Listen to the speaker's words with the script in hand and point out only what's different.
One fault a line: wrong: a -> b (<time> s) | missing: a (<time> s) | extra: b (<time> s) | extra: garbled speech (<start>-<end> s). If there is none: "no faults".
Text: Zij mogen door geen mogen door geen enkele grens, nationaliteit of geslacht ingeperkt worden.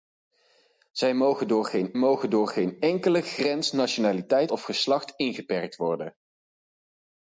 no faults